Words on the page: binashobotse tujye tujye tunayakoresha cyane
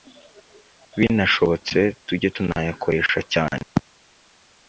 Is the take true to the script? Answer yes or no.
no